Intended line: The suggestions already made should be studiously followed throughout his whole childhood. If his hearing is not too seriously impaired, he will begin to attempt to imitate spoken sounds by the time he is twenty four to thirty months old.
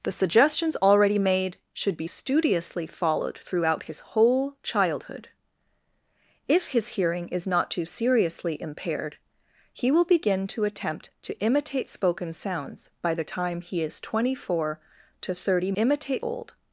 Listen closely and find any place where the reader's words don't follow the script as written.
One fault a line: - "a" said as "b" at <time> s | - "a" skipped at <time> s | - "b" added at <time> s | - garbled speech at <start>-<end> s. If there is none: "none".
- "months" said as "imitate" at 15.8 s